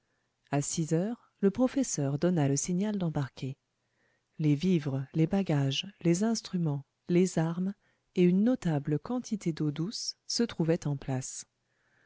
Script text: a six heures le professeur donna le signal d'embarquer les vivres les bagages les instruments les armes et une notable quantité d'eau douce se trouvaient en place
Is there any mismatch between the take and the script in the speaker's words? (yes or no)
no